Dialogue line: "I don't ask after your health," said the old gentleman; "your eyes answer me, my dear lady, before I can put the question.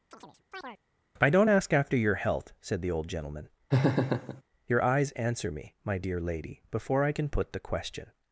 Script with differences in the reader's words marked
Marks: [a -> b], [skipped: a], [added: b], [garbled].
"I don't ask after your health," said the old gentleman; "your eyes answer me, my dear lady, before I can put the question.